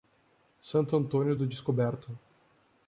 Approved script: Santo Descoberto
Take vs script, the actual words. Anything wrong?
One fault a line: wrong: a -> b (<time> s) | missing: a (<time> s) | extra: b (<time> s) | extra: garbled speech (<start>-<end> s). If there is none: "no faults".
extra: Antônio do (1.0 s)